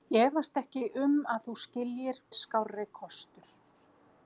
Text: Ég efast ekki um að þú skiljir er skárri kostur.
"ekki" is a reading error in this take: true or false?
false